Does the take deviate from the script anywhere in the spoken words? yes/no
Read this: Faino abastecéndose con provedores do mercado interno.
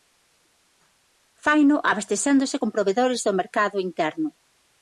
no